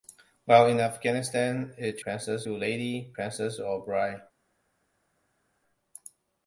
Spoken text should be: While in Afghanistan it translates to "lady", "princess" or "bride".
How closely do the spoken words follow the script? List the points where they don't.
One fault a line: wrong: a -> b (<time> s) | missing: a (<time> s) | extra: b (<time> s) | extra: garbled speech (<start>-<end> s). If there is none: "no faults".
wrong: translates -> princess (2.0 s)